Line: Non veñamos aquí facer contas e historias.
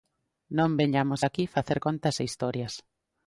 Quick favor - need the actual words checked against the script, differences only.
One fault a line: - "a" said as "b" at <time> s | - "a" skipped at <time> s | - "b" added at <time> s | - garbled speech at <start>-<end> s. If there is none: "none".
none